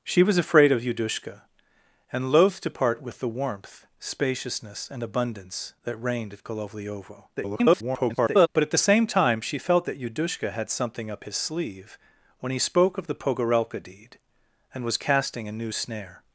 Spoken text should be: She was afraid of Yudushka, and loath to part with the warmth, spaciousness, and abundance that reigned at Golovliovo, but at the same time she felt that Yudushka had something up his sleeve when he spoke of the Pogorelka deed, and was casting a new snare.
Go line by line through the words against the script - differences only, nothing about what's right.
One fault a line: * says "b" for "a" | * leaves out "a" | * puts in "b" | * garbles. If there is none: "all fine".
* garbles